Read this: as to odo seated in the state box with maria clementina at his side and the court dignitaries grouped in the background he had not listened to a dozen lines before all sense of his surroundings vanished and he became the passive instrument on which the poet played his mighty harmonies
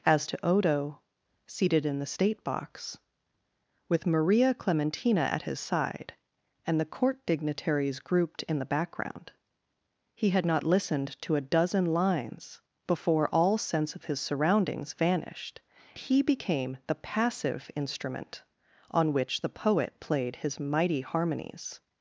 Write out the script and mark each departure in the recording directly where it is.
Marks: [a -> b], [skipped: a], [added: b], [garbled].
as to odo seated in the state box with maria clementina at his side and the court dignitaries grouped in the background he had not listened to a dozen lines before all sense of his surroundings vanished [skipped: and] he became the passive instrument on which the poet played his mighty harmonies